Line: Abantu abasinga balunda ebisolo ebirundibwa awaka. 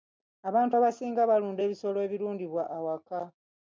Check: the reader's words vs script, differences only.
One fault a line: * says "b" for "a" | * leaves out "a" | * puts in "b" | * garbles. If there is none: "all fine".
all fine